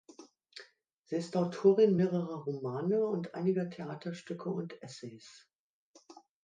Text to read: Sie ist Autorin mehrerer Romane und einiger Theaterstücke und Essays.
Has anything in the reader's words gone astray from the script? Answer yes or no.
no